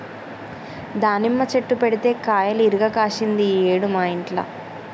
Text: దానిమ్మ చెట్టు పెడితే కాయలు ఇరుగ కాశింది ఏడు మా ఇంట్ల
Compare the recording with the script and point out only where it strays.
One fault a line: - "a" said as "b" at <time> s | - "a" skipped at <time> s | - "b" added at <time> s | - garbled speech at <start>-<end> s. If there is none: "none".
- "ఈ" added at 3.5 s